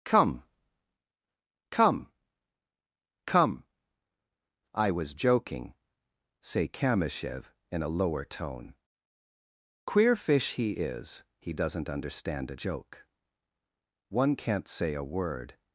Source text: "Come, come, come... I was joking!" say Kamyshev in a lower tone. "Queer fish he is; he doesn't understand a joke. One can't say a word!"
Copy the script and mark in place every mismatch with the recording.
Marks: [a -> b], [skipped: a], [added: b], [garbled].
"Come, come, come... I was joking!" say Kamyshev in a lower tone. "Queer fish he is; he doesn't understand a joke. One can't say a word!"